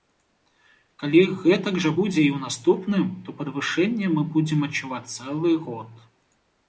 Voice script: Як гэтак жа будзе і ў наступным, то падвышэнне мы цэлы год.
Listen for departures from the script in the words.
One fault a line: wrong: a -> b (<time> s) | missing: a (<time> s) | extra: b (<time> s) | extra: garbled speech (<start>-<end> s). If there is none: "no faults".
wrong: Як -> Калі (1.0 s)
extra: будзем адчуваць (4.3 s)